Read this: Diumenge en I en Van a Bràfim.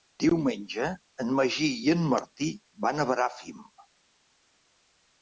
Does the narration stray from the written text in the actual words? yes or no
yes